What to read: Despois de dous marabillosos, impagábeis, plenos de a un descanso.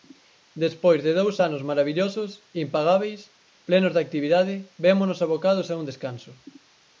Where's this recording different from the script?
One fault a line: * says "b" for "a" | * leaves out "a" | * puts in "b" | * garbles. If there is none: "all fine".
* puts in "anos"
* puts in "actividade vémonos abocados"